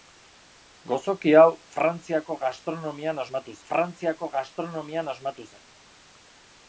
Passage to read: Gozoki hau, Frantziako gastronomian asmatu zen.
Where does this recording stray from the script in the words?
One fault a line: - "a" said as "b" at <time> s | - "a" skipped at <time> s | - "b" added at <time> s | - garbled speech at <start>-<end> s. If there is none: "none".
- "Frantziako gastronomian asmatu" added at 3.7 s